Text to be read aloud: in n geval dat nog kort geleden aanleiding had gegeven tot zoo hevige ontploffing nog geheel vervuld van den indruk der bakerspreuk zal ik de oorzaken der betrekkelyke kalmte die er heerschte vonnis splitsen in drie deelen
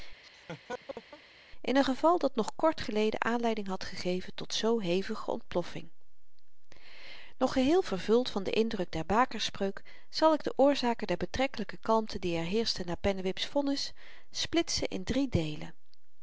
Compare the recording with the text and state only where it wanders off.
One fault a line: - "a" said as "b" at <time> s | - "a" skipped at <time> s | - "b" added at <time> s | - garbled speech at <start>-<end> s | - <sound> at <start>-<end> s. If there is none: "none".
- laugh at 0.2-1.2 s
- "na pennewip's" added at 12.9 s